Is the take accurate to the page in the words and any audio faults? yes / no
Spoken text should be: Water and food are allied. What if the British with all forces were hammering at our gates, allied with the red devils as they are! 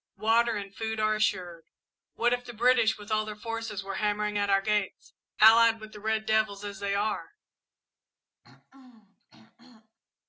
no